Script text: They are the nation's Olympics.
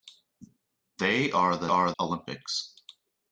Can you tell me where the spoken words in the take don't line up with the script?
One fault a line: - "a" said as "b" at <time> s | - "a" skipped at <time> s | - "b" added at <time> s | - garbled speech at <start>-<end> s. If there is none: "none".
- "nation's" said as "are" at 1.7 s